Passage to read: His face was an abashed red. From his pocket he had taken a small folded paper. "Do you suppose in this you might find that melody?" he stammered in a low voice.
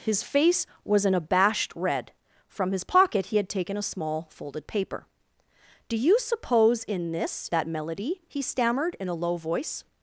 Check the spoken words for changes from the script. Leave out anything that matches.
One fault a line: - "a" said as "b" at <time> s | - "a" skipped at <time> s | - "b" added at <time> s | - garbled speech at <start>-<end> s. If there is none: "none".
- "you might find" skipped at 7.5 s